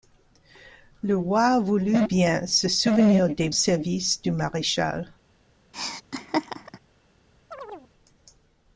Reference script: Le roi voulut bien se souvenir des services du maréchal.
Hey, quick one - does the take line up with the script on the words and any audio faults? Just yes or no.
no